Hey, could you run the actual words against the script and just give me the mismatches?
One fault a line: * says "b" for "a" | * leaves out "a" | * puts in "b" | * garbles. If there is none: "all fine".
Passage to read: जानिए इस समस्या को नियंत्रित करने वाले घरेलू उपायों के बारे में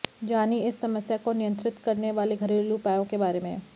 all fine